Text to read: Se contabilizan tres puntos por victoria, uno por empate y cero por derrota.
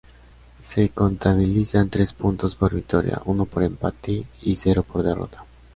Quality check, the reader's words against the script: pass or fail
pass